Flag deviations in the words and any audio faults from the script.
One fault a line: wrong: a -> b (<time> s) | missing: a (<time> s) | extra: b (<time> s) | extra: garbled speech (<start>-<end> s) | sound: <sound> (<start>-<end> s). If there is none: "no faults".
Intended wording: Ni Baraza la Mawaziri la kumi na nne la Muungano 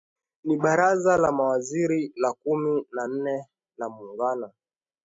no faults